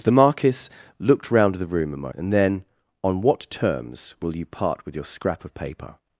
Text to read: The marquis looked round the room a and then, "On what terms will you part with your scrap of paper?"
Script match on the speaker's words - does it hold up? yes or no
yes